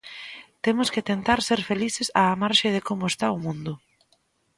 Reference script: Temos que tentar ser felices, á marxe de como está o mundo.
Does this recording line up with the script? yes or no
yes